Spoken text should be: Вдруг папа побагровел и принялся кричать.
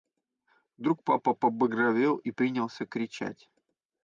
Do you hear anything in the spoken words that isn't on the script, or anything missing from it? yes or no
no